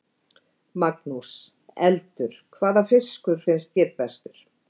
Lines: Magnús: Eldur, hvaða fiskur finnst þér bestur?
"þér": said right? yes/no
yes